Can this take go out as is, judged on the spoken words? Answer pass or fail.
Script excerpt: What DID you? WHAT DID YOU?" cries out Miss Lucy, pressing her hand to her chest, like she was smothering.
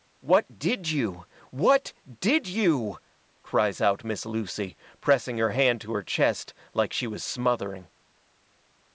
pass